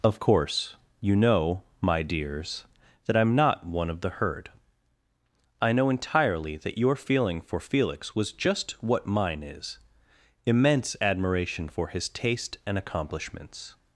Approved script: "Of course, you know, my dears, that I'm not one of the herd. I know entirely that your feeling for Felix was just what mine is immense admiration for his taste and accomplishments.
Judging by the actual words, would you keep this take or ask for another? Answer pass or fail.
pass